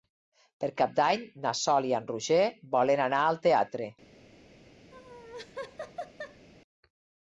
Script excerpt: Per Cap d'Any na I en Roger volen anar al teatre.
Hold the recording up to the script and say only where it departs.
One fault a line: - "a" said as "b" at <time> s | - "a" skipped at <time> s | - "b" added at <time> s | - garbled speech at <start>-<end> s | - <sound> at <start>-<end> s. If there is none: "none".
- "Sol" added at 1.6 s
- laugh at 4.9-6.5 s